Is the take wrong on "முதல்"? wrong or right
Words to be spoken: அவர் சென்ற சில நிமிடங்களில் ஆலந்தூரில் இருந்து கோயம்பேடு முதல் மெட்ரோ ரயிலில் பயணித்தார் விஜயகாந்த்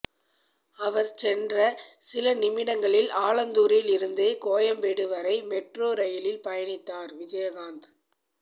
wrong